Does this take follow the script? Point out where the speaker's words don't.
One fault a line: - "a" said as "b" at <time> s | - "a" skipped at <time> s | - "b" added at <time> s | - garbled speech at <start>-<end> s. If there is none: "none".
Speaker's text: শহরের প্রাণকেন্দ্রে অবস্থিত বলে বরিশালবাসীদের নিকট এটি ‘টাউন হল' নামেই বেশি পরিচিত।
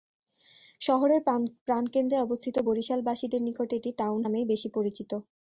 - "বলে" skipped at 2.5 s
- "হল" skipped at 4.2 s